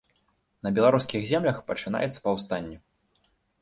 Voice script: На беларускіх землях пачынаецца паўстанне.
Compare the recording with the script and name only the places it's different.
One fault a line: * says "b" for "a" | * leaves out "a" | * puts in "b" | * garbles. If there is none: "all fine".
all fine